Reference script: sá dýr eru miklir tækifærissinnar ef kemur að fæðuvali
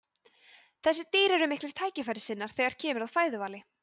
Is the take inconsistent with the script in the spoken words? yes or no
yes